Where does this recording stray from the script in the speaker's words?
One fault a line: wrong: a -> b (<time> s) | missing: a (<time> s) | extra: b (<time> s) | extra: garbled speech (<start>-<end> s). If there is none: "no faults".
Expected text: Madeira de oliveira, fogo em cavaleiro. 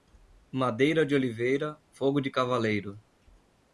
wrong: em -> de (2.2 s)